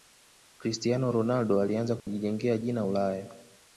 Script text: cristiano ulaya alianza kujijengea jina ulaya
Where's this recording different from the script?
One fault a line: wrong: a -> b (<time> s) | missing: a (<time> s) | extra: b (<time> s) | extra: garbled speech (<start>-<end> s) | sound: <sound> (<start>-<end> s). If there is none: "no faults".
wrong: ulaya -> ronaldo (1.1 s)
sound: dropout (2.0-2.1 s)